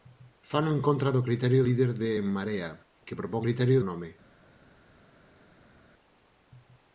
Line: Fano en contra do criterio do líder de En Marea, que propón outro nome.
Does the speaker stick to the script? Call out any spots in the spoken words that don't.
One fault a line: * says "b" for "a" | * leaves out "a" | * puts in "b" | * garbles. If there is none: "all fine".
* leaves out "do"
* says "criterio" for "outro"